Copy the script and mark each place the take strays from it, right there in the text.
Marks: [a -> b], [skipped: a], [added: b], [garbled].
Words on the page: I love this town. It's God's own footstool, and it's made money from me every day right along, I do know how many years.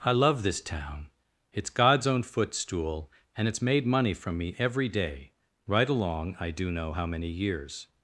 I love this town. It's God's own footstool, and it's made money from me every day right along, I do know how many years.